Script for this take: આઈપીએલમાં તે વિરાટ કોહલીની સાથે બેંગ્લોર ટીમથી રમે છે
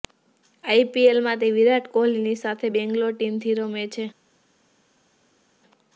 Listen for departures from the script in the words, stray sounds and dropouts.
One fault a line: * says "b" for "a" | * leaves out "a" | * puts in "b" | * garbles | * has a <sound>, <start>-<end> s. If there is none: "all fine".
all fine